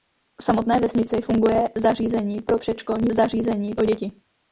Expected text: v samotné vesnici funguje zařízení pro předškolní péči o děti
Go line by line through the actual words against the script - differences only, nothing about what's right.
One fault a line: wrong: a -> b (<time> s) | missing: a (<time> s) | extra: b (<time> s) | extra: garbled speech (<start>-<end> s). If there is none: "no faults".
wrong: péči -> zařízení (3.1 s)